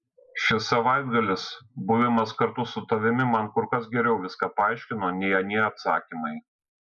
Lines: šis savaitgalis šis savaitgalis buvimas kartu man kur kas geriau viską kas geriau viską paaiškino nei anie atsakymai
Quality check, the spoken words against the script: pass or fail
fail